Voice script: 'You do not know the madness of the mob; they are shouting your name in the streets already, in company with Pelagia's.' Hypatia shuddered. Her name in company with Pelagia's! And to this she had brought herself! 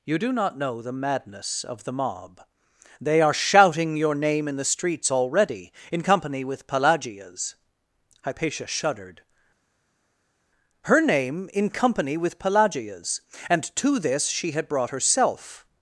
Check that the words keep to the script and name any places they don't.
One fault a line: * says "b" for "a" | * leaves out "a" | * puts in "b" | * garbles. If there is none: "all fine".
all fine